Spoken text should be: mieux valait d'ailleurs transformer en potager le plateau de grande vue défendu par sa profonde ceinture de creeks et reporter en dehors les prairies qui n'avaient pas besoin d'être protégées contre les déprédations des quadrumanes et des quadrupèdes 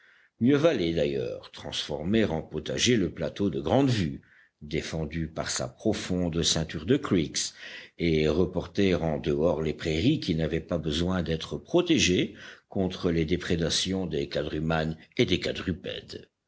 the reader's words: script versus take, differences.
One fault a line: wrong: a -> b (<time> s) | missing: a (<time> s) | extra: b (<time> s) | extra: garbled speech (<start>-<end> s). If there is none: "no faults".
no faults